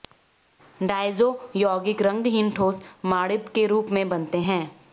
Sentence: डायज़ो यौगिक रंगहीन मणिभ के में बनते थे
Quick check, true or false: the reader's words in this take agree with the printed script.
false